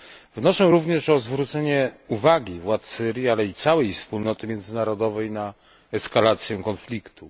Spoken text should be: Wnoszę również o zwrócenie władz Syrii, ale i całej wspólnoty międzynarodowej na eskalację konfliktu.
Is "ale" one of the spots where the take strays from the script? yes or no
no